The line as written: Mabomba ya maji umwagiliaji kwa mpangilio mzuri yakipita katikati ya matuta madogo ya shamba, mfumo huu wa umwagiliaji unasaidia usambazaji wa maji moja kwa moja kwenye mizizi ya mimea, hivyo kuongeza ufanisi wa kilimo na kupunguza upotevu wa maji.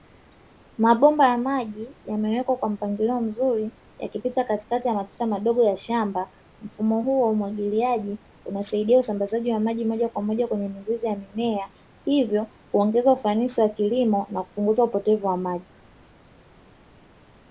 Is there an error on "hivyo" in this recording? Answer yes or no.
no